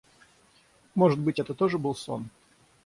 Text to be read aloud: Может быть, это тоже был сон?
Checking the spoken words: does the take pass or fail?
pass